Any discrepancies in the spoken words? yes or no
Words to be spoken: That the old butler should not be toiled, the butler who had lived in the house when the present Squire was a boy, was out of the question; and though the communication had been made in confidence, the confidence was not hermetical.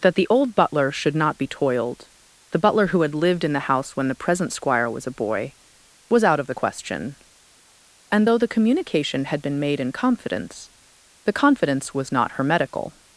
no